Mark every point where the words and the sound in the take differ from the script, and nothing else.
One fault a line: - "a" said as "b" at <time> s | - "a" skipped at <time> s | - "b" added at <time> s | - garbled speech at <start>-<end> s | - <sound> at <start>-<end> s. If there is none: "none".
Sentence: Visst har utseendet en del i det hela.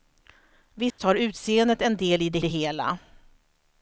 - dropout at 0.9-1.0 s
- "det" added at 2.4 s